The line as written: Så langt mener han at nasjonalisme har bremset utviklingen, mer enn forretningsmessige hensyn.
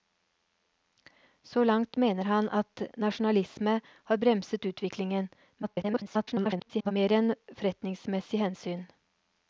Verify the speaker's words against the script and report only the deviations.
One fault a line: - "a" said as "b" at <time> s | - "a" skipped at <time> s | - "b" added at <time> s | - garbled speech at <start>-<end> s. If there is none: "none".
- garbled speech at 5.6-6.9 s